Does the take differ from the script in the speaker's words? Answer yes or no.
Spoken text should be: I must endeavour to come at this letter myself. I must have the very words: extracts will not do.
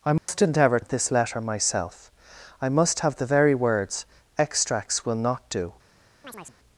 yes